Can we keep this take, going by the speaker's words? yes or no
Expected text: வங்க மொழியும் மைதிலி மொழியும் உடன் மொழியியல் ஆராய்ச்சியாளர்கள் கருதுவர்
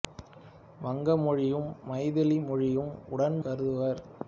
no